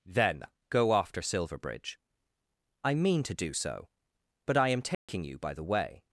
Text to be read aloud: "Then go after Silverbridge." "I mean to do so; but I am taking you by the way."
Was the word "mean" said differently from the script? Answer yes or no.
no